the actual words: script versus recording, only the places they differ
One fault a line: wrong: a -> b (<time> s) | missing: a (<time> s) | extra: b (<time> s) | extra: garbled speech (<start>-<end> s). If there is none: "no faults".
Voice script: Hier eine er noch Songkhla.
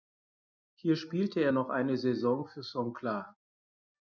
wrong: eine -> spielte (0.9 s)
extra: eine Saison für (1.7 s)